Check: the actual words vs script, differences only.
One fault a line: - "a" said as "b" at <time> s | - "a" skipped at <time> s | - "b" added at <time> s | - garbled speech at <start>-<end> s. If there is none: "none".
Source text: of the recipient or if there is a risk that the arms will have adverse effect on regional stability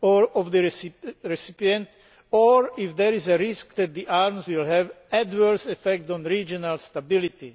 none